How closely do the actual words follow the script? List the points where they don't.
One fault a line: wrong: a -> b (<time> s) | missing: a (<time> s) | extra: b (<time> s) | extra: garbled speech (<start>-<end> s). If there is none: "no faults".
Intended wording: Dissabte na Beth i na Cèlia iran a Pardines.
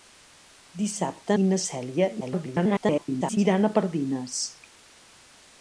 missing: na Beth (1.4 s)
extra: garbled speech (2.2-3.4 s)